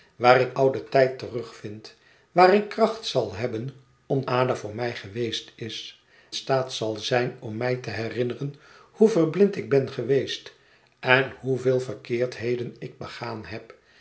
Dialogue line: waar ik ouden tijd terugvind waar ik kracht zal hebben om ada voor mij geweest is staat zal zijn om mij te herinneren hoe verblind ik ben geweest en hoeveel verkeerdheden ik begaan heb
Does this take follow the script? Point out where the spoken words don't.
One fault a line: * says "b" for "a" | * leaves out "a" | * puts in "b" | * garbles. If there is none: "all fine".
all fine